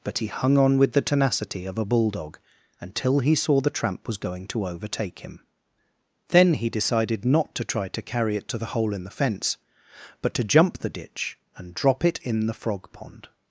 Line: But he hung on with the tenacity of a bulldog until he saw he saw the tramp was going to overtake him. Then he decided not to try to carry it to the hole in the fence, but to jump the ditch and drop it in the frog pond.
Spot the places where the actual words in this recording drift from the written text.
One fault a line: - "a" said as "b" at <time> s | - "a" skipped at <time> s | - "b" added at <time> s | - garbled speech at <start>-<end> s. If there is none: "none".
- "he saw" skipped at 3.6 s